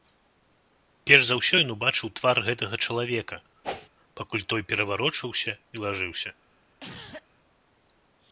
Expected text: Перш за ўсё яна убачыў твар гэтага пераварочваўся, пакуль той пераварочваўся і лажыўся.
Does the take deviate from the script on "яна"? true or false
true